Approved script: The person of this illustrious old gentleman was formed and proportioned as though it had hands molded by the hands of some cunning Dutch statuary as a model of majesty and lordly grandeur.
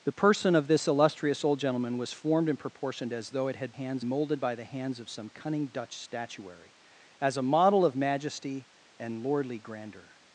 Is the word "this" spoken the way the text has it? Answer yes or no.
yes